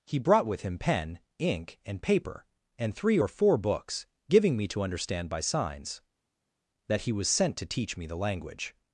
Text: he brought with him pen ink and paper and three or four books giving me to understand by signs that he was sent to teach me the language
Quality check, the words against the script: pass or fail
pass